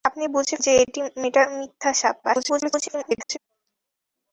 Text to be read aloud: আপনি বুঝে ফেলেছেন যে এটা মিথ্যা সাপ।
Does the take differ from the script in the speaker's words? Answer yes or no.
yes